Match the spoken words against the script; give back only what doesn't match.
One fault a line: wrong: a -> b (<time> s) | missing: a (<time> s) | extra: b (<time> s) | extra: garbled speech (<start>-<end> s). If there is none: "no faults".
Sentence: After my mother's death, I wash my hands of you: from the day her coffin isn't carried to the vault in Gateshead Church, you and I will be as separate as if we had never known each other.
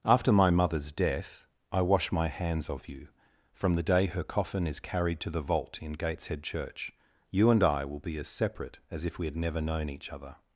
wrong: isn't -> is (4.7 s)